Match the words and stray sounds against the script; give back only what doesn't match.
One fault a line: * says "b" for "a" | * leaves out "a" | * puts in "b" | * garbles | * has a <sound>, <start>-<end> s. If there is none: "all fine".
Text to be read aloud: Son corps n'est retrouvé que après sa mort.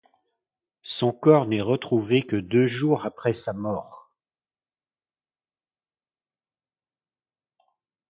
* puts in "deux jours"